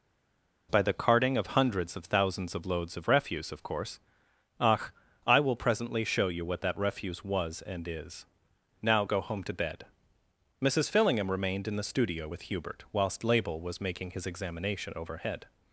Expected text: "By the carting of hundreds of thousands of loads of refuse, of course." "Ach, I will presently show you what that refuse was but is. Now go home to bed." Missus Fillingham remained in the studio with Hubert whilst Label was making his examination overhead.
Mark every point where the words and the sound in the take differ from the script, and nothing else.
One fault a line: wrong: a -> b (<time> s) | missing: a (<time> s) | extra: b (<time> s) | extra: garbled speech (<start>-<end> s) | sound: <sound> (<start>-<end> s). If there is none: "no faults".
wrong: but -> and (7.6 s)